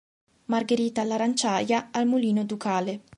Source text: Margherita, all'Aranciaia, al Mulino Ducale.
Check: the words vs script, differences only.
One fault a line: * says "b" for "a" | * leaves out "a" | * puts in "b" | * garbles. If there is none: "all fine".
all fine